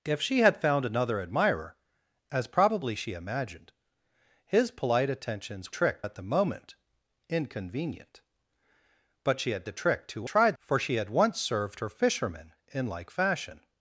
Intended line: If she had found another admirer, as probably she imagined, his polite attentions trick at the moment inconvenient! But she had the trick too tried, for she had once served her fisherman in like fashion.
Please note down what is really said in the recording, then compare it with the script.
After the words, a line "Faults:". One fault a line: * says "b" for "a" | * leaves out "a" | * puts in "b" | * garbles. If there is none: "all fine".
If she had found another admirer, as probably she imagined, his polite attentions trick at the moment inconvenient! But she had the trick too tried, for she had once served her fisherman in like fashion.
Faults:
all fine